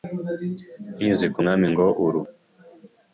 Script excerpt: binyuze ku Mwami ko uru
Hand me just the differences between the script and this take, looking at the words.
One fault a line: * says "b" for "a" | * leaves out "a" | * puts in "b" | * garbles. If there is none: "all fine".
* says "ngo" for "ko"